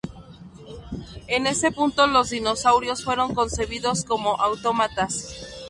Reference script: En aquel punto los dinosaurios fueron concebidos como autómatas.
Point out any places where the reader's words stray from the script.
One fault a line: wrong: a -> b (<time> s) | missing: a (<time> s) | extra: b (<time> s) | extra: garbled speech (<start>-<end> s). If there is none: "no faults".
wrong: aquel -> ese (1.4 s)